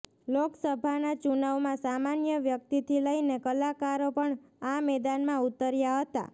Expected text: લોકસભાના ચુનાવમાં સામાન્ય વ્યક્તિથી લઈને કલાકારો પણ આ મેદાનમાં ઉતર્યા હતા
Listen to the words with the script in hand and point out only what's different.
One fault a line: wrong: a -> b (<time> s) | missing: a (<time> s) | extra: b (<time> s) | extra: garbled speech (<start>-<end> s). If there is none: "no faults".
no faults